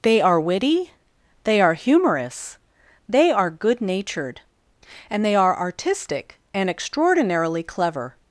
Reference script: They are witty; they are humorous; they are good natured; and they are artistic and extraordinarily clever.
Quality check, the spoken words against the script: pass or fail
pass